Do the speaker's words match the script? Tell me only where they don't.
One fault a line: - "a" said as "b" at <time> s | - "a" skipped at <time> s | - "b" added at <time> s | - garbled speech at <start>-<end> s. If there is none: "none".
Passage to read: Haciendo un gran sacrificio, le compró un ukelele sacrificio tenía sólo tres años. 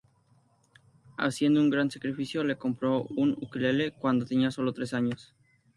- "sacrificio" said as "cuando" at 4.0 s